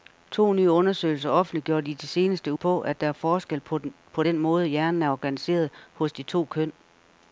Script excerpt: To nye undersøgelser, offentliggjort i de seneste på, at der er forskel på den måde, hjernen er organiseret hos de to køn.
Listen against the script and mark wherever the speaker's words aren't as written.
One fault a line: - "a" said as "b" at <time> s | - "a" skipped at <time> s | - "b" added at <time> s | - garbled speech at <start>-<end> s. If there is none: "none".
none